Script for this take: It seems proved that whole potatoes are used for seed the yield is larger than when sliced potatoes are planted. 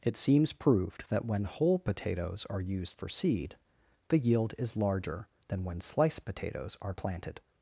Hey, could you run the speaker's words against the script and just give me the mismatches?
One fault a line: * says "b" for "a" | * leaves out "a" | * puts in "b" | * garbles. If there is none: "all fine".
* puts in "when"